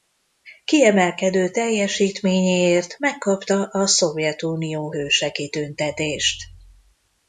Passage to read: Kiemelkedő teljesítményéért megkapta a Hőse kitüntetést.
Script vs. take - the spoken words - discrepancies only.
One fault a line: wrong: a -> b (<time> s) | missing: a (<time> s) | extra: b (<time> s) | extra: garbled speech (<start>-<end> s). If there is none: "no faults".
extra: Szovjetunió (3.9 s)